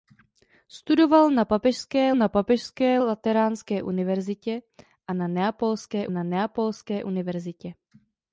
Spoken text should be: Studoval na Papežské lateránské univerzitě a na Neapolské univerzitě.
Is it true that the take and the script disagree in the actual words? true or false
true